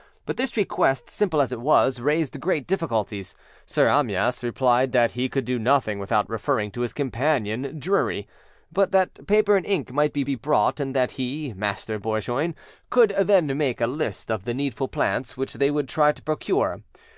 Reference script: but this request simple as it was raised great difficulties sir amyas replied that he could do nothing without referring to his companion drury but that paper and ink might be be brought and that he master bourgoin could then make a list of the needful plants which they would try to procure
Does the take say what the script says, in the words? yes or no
yes